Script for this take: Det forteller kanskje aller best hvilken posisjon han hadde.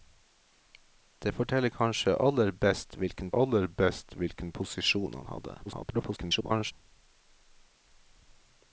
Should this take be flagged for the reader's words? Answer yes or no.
yes